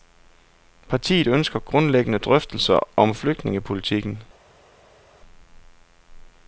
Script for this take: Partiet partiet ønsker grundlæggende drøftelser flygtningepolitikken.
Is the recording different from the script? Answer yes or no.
yes